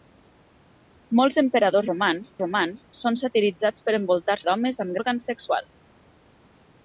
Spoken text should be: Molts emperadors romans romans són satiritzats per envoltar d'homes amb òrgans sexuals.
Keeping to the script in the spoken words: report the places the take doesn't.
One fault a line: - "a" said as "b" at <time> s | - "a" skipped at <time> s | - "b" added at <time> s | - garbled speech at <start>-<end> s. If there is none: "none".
none